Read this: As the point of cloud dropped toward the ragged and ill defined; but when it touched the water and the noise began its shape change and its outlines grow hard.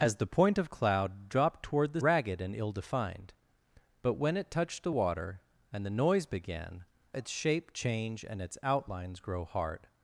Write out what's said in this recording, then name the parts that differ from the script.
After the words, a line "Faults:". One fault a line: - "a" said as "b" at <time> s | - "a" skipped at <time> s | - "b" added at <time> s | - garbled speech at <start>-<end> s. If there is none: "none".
As the point of cloud dropped toward the ragged and ill defined; but when it touched the water and the noise began its shape change and its outlines grow hard.
Faults:
none